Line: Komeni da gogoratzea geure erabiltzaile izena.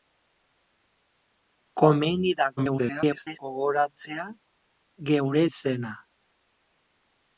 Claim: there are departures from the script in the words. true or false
true